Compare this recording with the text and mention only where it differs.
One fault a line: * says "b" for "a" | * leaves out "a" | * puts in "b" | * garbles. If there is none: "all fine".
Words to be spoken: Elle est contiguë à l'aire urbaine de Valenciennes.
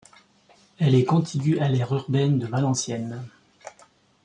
all fine